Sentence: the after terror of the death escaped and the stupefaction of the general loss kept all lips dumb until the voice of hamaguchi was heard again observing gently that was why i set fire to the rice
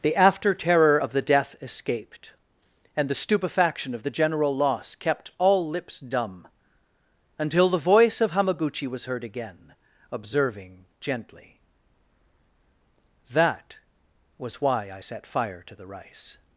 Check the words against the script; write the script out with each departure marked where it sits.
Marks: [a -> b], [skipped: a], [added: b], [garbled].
the after terror of the death escaped and the stupefaction of the general loss kept all lips dumb until the voice of hamaguchi was heard again observing gently that was why i set fire to the rice